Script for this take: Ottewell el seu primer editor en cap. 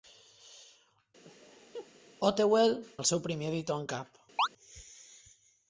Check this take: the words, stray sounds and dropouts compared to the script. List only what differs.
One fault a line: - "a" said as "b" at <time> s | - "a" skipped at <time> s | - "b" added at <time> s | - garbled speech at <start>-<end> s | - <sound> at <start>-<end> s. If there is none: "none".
- laugh at 1.2-1.9 s
- chirp at 4.4-4.5 s